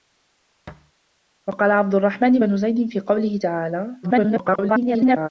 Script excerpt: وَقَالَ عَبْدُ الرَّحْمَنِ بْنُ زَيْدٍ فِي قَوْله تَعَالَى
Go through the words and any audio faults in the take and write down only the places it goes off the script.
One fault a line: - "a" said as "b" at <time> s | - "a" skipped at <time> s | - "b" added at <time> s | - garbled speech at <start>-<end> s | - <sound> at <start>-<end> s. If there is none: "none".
- thud at 0.7-0.9 s
- garbled speech at 4.0-5.3 s